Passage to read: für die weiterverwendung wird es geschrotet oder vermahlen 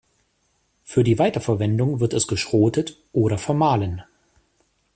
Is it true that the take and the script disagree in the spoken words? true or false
false